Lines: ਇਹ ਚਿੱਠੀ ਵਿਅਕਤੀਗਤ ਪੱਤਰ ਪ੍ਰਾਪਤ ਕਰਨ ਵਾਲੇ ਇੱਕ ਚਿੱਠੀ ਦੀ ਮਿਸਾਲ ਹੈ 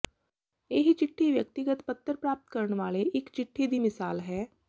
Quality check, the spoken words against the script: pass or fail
pass